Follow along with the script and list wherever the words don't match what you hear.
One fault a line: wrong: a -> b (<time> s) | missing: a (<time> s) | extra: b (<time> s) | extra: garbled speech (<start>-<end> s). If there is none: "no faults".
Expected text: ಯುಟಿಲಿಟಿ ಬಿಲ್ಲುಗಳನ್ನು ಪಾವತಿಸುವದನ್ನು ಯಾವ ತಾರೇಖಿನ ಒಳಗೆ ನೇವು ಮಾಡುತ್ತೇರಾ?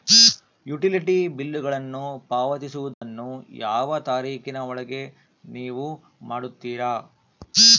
no faults